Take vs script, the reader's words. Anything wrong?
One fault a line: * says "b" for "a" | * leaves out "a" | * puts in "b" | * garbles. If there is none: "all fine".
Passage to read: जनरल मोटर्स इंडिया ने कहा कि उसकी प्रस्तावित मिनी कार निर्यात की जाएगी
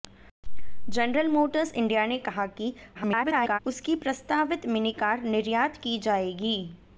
* garbles